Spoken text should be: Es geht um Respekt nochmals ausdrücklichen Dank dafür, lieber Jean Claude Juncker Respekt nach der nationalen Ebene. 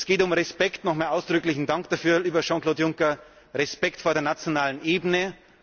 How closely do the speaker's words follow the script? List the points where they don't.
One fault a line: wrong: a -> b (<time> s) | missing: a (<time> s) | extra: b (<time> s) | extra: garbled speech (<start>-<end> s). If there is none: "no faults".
wrong: nach -> vor (4.0 s)